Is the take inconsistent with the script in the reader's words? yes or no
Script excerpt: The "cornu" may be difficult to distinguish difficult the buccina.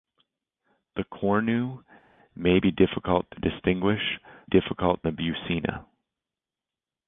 no